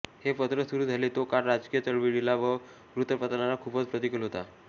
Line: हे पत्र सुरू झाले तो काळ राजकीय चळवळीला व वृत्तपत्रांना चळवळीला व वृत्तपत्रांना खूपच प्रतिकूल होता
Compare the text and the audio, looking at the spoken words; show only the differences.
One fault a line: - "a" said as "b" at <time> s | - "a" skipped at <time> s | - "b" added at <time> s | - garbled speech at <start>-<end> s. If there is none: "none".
- "चळवळीला व वृत्तपत्रांना" skipped at 3.5 s